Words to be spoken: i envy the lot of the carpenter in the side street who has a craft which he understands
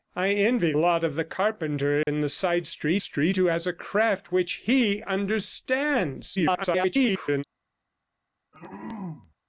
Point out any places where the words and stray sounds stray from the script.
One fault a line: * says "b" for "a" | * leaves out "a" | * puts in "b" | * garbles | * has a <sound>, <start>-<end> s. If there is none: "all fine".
* leaves out "the"
* has a dropout, 2.0-2.1 s
* puts in "street"
* garbles
* has a throat clearing, 8.5-9.3 s